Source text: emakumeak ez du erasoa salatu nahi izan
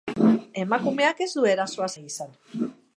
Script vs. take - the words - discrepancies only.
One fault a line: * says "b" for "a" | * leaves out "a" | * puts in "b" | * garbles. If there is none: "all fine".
* leaves out "salatu"